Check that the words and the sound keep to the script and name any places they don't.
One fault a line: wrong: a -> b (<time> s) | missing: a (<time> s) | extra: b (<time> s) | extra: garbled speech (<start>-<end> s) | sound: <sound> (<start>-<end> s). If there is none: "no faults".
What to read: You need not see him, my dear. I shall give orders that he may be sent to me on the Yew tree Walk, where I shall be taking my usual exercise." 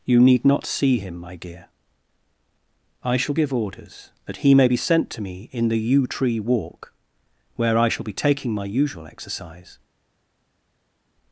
wrong: on -> in (5.5 s)